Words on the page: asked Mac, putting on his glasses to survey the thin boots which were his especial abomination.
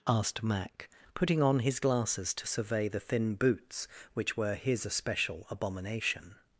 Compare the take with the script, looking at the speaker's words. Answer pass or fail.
pass